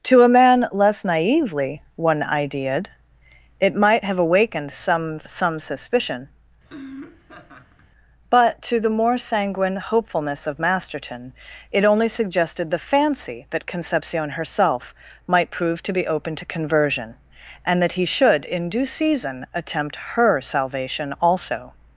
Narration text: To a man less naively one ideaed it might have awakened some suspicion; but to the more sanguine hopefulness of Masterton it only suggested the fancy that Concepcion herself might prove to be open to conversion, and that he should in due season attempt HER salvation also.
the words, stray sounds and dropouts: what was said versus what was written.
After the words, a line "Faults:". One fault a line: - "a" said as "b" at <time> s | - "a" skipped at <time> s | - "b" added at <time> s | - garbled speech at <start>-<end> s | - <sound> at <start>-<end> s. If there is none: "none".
To a man less naively one ideaed it might have awakened some some suspicion; but to the more sanguine hopefulness of Masterton it only suggested the fancy that Concepcion herself might prove to be open to conversion, and that he should in due season attempt HER salvation also.
Faults:
- "some" added at 5.2 s
- laugh at 6.6-7.9 s